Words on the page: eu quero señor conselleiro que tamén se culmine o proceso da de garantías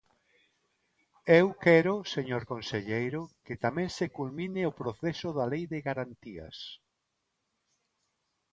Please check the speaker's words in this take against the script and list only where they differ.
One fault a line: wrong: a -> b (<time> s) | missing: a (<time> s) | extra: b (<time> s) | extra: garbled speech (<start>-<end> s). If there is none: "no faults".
extra: lei (5.5 s)